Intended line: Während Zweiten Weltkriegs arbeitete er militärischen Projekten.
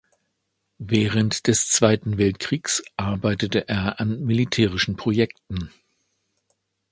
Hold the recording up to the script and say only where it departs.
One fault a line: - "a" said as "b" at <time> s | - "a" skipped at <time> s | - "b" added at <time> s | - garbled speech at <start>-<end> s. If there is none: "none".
- "des" added at 1.4 s
- "an" added at 4.0 s